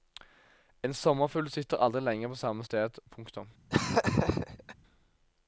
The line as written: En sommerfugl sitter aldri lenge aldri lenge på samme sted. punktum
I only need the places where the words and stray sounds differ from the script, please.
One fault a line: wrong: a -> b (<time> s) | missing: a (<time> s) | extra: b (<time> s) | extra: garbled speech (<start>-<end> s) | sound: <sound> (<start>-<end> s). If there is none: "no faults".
missing: aldri lenge (2.3 s)
sound: laugh (3.7-4.8 s)